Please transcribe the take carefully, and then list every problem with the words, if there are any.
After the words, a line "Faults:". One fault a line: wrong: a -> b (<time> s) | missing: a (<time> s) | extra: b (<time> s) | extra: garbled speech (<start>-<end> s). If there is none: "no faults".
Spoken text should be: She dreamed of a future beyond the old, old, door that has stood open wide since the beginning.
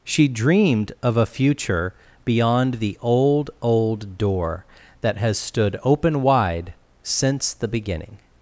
She dreamed of a future beyond the old, old, door that has stood open wide since the beginning.
Faults:
no faults